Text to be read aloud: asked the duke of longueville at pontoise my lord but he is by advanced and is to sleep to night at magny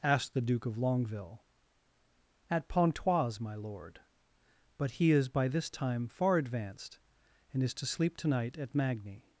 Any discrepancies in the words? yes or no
yes